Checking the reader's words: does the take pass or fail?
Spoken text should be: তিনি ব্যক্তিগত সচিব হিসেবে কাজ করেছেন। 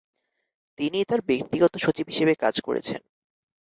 fail